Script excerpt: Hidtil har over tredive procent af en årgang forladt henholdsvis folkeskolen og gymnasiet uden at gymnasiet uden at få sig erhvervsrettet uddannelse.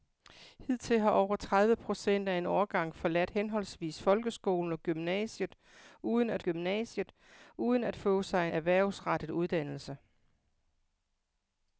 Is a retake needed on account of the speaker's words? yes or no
no